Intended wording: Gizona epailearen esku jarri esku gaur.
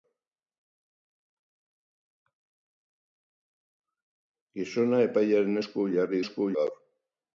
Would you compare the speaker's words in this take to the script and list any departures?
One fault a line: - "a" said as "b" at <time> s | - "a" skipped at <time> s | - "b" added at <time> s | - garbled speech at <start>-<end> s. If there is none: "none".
none